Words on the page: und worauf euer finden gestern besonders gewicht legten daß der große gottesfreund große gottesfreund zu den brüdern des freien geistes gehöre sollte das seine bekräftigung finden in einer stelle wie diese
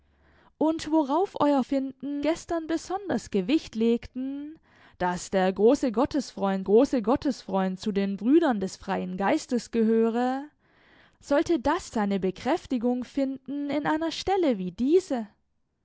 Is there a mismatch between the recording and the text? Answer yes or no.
no